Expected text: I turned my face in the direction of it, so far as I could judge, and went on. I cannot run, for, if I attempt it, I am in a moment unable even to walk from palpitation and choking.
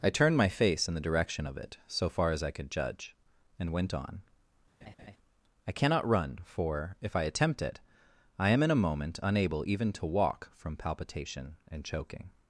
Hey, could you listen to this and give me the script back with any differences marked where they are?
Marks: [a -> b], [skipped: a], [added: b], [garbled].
I turned my face in the direction of it, so far as I could judge, and went on. I cannot run, for, if I attempt it, I am in a moment unable even to walk from palpitation and choking.